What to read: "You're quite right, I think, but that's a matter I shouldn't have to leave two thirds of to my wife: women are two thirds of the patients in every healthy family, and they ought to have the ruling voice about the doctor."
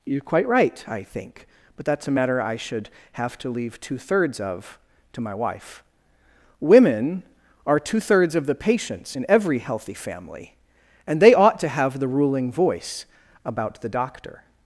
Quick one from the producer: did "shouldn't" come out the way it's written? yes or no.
no